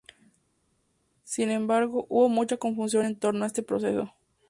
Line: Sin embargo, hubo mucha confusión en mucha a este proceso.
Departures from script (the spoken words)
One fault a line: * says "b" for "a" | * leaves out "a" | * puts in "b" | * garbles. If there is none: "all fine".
* says "torno" for "mucha"